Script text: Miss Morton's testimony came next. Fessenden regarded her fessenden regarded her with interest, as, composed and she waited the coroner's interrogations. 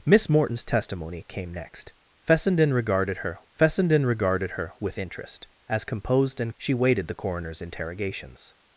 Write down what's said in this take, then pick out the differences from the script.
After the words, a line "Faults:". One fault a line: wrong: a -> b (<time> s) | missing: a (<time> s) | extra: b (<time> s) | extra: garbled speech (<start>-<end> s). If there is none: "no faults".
Miss Morton's testimony came next. Fessenden regarded her fessenden regarded her with interest, as, composed and she waited the coroner's interrogations.
Faults:
no faults